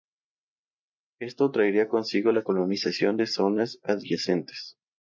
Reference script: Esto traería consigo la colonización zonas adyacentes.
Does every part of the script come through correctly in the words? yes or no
no